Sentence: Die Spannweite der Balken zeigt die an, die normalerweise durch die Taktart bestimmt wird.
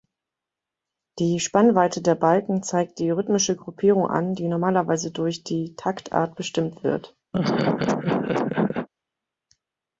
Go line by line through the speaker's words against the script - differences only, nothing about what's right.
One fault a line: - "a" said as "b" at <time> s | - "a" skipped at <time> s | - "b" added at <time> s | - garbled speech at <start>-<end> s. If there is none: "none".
- "rhythmische Gruppierung" added at 3.1 s